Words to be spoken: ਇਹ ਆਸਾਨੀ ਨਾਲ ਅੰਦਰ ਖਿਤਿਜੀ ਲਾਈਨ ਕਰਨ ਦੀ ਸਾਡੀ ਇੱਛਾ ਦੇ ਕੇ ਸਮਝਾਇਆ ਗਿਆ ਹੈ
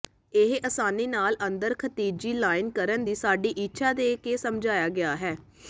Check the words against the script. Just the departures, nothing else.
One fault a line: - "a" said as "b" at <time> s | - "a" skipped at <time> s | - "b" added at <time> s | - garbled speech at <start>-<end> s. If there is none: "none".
none